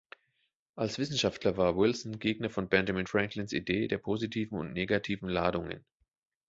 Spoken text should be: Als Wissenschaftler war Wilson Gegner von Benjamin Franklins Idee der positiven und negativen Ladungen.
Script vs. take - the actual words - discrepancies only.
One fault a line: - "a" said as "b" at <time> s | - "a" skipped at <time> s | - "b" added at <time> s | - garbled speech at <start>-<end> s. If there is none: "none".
none